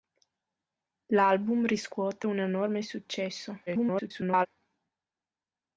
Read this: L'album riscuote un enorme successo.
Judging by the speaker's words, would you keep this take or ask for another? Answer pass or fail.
fail